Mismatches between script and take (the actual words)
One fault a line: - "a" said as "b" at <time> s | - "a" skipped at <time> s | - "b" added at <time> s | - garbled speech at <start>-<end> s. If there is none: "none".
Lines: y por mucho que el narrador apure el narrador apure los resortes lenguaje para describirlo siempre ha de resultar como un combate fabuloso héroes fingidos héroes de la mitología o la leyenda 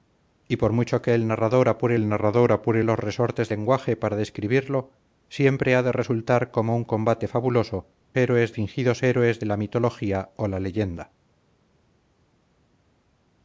none